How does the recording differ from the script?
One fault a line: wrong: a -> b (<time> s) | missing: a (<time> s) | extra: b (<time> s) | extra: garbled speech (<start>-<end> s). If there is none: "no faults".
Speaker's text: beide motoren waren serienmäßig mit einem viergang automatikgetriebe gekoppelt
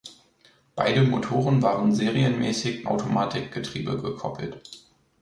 missing: mit einem viergang (2.9 s)